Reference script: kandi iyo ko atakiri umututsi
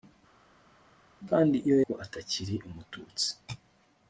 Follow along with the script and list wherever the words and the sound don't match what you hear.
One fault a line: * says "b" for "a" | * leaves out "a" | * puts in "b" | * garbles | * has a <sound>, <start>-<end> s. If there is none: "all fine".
all fine